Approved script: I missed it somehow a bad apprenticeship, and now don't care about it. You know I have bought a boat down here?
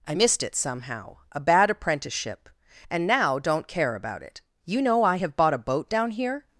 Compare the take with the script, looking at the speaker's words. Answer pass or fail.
pass